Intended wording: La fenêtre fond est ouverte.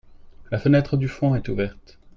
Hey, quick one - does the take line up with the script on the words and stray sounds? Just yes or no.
no